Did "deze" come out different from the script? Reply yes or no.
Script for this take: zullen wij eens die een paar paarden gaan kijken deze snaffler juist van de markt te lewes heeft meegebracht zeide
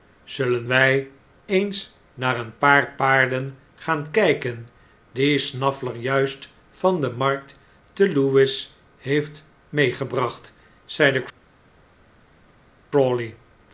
yes